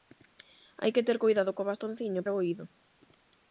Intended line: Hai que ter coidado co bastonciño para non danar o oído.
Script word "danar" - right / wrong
wrong